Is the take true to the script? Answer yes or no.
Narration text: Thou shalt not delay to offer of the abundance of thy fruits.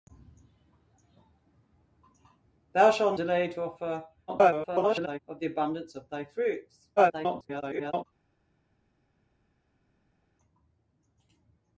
no